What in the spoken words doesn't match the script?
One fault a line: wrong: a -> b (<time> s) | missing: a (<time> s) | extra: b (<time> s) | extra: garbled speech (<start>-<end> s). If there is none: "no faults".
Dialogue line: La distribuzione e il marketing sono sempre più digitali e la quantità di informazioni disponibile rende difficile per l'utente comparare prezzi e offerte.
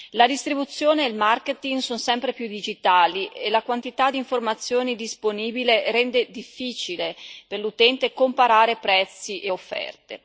no faults